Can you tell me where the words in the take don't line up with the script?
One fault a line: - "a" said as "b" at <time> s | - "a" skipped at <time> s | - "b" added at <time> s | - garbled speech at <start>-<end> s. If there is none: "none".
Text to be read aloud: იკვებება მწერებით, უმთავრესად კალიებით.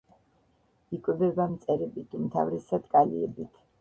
none